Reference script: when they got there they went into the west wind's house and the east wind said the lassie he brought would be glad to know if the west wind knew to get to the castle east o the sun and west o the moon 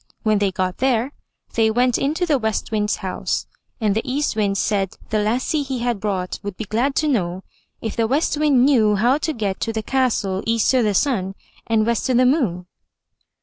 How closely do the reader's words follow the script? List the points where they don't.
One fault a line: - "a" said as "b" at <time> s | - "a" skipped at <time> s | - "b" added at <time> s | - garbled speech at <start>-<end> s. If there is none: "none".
- "had" added at 5.8 s
- "how" added at 8.9 s